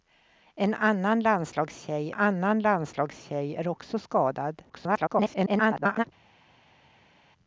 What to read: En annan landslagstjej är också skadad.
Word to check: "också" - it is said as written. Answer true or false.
true